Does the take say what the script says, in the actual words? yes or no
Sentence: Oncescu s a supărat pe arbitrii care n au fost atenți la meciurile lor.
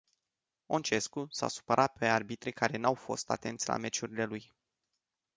no